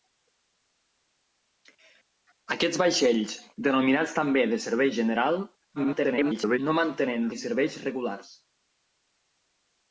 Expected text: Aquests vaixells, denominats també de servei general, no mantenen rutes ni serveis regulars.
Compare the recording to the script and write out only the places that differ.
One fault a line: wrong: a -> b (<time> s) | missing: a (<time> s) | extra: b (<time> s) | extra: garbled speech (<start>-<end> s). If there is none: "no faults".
extra: garbled speech (5.8-6.6 s)
missing: rutes (7.3 s)